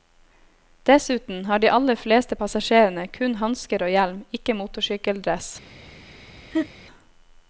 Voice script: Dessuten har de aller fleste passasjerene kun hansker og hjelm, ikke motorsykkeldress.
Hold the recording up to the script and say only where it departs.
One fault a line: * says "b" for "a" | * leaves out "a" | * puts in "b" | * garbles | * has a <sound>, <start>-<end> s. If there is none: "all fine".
* has a laugh, 6.5-6.7 s